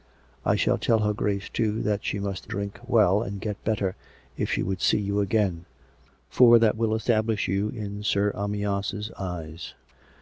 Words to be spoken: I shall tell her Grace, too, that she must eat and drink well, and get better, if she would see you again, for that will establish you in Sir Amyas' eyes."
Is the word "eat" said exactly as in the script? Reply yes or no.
no